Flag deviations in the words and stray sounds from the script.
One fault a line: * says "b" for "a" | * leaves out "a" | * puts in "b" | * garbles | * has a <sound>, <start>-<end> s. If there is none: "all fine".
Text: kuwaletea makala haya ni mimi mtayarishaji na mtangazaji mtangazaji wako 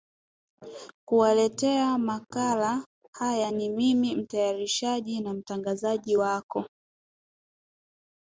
* leaves out "mtangazaji"